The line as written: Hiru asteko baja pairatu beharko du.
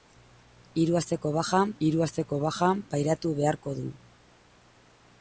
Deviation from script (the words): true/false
true